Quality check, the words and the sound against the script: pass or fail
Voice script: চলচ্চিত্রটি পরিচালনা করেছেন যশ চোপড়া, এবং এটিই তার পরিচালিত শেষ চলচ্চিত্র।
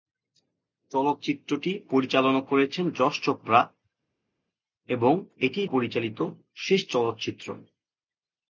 fail